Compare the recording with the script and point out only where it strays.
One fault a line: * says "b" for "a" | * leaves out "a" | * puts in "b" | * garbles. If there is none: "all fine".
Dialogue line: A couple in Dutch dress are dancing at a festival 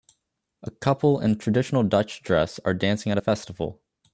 * puts in "traditional"